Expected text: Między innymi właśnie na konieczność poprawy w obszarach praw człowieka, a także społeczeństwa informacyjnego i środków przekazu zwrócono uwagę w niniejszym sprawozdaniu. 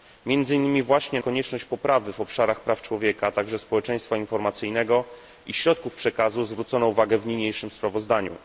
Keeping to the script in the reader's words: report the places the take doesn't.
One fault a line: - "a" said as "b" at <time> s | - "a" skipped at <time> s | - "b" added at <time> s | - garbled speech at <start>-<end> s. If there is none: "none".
- "na" skipped at 1.2 s